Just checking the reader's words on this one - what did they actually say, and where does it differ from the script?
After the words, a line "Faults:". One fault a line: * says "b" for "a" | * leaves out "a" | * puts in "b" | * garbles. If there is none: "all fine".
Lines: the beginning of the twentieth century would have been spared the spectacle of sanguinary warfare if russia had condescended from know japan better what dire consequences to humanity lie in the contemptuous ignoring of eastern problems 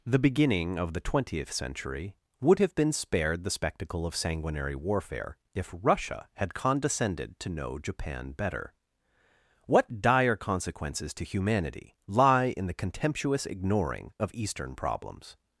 the beginning of the twentieth century would have been spared the spectacle of sanguinary warfare if russia had condescended to know japan better what dire consequences to humanity lie in the contemptuous ignoring of eastern problems
Faults:
* says "to" for "from"